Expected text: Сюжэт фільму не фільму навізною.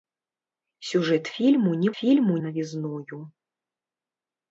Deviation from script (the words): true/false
false